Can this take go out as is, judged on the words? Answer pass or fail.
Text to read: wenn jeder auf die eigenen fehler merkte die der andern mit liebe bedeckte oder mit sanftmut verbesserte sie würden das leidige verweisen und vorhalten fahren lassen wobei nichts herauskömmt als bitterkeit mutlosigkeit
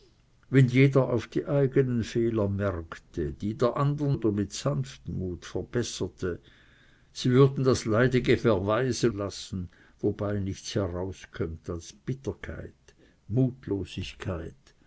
fail